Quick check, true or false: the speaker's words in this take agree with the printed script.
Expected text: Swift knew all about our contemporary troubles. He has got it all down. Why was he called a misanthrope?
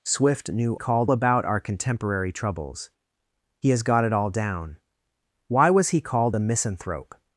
false